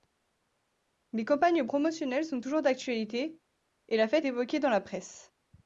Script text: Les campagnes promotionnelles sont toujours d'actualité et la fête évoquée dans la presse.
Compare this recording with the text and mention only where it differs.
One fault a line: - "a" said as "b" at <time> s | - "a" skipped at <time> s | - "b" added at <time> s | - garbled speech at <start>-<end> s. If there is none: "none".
none